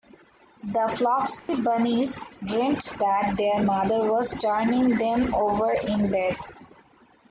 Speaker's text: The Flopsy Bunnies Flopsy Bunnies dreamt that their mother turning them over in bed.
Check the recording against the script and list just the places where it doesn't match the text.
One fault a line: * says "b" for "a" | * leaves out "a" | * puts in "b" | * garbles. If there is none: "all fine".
* leaves out "Flopsy Bunnies"
* puts in "was"